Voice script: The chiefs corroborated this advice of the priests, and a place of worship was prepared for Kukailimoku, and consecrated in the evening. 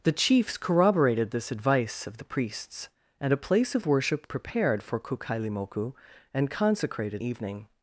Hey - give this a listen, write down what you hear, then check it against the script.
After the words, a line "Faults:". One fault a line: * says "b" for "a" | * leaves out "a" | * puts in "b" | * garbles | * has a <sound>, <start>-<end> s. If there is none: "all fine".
The chiefs corroborated this advice of the priests, and a place of worship prepared for Kukailimoku, and consecrated evening.
Faults:
* leaves out "was"
* leaves out "in the"